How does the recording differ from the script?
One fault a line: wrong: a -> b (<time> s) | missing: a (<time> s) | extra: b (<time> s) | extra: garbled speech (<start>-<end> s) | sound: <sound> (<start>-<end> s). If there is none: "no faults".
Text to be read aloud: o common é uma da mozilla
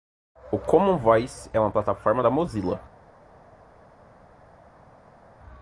extra: voice (1.0 s)
extra: plataforma (1.7 s)